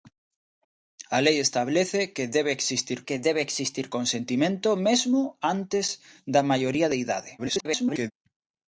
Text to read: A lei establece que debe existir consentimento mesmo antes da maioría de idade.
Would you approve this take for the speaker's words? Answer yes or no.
no